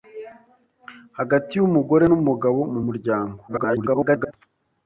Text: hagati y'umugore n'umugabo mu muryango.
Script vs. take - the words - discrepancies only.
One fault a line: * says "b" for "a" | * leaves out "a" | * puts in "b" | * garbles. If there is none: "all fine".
* garbles